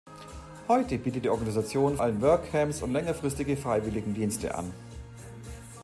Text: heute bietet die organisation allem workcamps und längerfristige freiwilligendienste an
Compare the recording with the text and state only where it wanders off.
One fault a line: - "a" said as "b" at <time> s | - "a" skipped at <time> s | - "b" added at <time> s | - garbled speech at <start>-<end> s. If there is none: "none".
none